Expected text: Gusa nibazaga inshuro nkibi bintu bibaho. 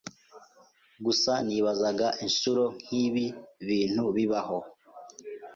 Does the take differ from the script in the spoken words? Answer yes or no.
no